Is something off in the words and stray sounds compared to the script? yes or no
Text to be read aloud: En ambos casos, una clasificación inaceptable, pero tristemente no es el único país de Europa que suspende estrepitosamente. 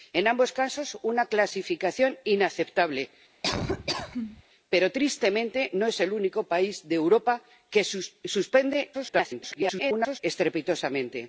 yes